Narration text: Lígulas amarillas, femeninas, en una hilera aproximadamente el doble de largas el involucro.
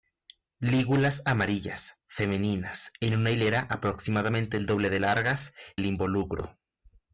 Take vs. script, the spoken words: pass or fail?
pass